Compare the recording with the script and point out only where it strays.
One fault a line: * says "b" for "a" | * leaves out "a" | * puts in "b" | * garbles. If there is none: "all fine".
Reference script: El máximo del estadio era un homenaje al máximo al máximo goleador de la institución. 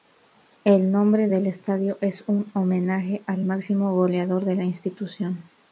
* says "nombre" for "máximo"
* says "es" for "era"
* leaves out "al máximo"